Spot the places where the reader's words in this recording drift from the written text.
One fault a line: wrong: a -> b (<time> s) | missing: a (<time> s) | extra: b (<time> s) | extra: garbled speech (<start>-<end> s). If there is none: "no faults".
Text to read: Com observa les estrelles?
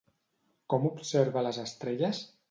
no faults